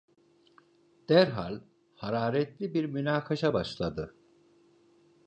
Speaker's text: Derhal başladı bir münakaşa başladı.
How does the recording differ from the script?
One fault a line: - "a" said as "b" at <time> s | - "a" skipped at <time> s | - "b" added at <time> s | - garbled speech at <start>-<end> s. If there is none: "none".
- "başladı" said as "hararetli" at 1.9 s